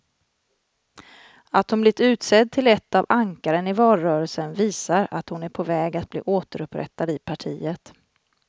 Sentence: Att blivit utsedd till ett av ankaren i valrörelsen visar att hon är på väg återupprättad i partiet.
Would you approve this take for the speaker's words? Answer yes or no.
no